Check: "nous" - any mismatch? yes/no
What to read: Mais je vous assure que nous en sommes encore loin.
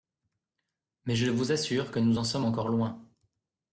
no